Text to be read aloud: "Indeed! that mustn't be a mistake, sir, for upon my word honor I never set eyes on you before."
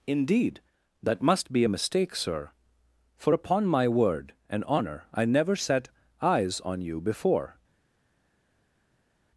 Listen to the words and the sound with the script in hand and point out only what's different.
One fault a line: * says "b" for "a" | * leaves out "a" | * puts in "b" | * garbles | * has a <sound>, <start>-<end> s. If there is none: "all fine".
* says "must" for "mustn't"
* puts in "and"